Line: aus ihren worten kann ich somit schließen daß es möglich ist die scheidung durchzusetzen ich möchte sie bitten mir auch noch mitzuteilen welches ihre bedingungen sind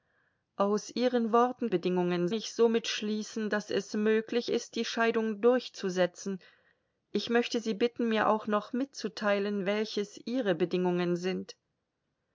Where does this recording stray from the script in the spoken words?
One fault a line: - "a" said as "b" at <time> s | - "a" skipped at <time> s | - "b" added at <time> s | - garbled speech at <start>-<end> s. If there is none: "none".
- "kann" said as "bedingungen" at 1.7 s